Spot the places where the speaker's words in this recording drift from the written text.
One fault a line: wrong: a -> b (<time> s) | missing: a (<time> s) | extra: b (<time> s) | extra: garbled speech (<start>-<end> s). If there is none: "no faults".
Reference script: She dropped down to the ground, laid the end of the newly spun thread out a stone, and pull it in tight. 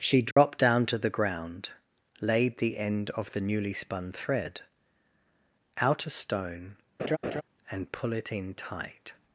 no faults